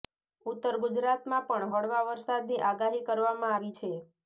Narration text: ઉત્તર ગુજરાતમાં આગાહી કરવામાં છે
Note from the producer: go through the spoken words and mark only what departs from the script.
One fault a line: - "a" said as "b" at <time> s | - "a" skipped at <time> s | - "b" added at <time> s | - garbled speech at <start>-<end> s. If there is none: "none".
- "પણ હળવા વરસાદની" added at 1.5 s
- "આવી" added at 3.5 s